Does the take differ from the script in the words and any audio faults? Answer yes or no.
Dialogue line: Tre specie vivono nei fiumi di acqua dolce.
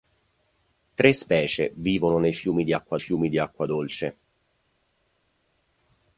yes